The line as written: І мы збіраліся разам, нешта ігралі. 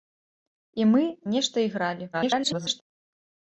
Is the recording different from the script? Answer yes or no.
yes